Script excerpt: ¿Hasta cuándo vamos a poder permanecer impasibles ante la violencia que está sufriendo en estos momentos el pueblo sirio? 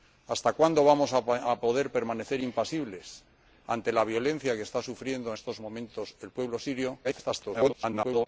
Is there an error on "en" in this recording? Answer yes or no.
yes